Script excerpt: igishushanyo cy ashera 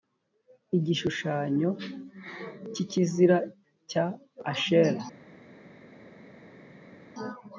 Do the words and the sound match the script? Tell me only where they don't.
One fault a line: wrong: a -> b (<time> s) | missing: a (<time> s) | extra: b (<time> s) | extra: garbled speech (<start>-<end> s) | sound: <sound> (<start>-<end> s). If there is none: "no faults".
extra: ikizira cya (2.8 s)